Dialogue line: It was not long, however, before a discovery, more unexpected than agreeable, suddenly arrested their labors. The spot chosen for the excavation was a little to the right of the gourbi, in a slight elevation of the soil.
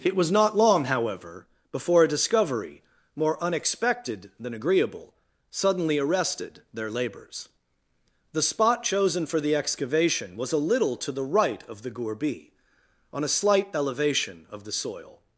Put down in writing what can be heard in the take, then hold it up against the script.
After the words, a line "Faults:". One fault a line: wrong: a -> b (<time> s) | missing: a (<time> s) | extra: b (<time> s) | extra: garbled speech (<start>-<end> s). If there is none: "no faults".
It was not long, however, before a discovery, more unexpected than agreeable, suddenly arrested their labors. The spot chosen for the excavation was a little to the right of the gourbi, on a slight elevation of the soil.
Faults:
wrong: in -> on (13.1 s)